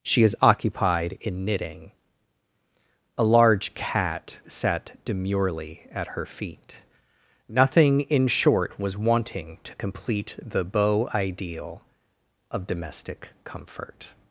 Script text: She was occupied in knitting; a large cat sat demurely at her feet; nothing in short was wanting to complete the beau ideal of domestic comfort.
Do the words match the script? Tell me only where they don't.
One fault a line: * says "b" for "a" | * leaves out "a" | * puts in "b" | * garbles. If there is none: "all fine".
* says "is" for "was"